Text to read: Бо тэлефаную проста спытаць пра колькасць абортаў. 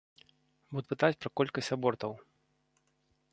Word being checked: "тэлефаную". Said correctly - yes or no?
no